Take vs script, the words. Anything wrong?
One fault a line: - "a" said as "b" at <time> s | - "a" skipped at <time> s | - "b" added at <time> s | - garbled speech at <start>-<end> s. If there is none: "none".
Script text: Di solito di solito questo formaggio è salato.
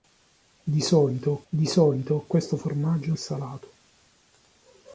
none